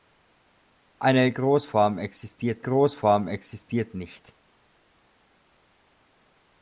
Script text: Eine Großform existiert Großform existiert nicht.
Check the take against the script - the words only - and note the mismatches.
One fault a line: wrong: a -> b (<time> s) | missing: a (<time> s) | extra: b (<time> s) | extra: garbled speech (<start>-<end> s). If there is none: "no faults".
no faults